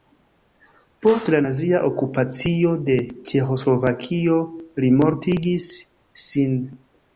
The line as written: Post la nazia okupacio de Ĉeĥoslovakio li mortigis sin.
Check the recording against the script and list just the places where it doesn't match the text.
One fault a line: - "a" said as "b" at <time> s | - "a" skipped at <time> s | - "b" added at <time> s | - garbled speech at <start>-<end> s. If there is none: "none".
none